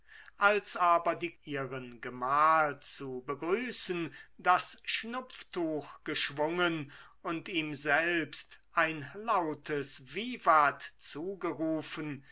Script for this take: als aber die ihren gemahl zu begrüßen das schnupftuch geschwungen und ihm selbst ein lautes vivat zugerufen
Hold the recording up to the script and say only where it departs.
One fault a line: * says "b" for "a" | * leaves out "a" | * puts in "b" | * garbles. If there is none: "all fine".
all fine